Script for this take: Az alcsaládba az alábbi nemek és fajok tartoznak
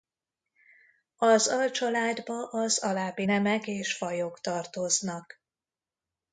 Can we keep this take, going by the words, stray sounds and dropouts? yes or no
yes